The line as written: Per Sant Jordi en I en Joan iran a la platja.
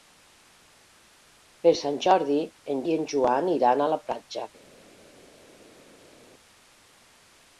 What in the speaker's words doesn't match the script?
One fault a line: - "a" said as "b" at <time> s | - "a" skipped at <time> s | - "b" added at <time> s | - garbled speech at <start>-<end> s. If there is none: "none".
none